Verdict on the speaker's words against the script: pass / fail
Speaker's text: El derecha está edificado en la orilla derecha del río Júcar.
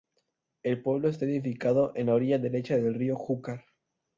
fail